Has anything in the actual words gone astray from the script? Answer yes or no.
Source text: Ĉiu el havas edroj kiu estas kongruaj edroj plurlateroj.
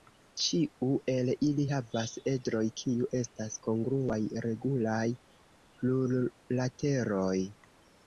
yes